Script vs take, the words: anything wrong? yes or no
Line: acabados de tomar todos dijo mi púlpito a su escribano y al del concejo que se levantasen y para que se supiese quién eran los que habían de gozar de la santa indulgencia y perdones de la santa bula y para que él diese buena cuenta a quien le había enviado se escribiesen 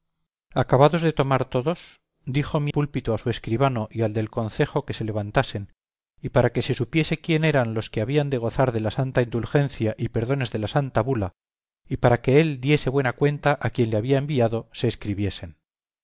no